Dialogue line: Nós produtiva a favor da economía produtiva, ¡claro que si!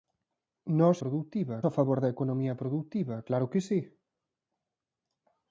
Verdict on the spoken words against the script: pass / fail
pass